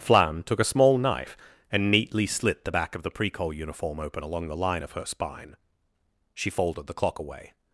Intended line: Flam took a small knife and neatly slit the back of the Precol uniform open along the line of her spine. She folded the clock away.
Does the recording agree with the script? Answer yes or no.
yes